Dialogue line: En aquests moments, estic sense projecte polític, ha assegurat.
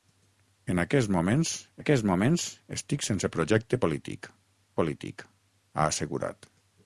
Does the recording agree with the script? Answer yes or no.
no